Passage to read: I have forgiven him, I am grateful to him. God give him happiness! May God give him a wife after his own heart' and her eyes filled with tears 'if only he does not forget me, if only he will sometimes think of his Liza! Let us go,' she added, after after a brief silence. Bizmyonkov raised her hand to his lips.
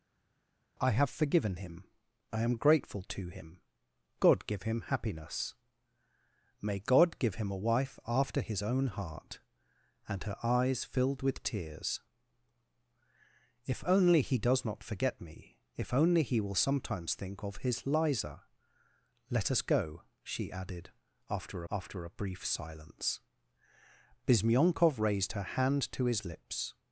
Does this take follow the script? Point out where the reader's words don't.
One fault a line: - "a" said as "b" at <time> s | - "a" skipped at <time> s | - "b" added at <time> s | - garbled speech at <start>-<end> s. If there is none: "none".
none